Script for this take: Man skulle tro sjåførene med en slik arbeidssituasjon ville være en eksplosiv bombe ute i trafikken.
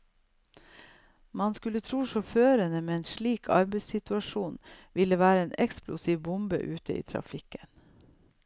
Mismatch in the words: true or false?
false